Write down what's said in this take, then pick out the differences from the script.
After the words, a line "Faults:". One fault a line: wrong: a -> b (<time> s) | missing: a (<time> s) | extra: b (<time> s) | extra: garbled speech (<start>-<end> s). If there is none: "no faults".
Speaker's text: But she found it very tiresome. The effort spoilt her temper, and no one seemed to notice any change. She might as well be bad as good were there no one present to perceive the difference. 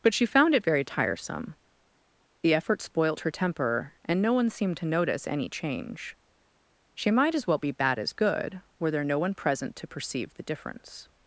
But she found it very tiresome. The effort spoilt her temper, and no one seemed to notice any change. She might as well be bad as good were there no one present to perceive the difference.
Faults:
no faults